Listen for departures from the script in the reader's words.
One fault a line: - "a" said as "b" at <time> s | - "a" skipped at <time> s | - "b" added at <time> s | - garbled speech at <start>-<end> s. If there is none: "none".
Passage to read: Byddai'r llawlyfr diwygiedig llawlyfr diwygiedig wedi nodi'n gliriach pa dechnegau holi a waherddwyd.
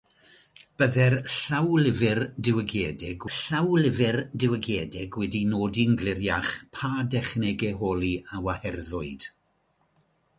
none